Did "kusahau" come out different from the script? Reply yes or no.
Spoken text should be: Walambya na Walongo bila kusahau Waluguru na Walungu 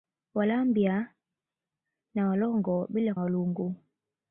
yes